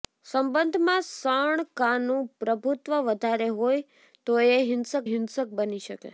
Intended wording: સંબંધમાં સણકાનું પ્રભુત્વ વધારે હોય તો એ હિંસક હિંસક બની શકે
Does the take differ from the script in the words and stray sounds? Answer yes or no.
no